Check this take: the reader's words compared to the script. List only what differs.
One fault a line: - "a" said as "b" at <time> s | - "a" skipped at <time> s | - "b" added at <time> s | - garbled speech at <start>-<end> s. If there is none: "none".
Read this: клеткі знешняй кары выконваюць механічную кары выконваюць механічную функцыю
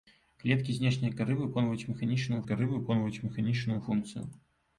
none